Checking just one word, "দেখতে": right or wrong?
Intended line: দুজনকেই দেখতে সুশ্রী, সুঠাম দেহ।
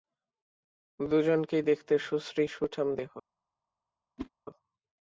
right